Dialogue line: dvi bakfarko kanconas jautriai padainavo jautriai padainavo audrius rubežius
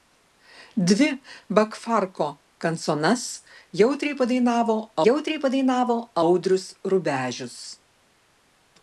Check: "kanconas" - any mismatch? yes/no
no